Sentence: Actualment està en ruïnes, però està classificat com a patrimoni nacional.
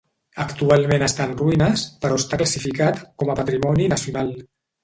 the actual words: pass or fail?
pass